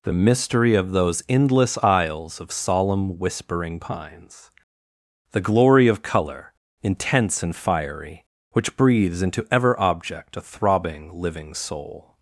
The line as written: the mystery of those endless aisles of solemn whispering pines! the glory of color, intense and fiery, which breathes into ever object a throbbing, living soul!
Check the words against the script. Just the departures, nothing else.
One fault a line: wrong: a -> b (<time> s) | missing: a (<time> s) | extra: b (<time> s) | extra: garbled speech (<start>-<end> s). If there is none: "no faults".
no faults